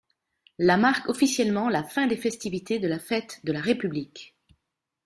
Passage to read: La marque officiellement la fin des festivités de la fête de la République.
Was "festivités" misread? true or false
false